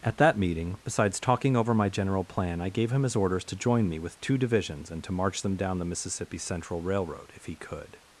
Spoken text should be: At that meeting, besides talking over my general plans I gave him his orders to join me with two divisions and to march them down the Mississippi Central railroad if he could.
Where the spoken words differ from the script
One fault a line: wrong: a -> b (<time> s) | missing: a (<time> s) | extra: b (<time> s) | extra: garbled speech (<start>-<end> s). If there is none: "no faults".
wrong: plans -> plan (2.2 s)